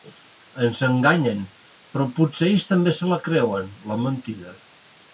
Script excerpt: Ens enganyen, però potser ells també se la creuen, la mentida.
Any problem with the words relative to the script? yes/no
no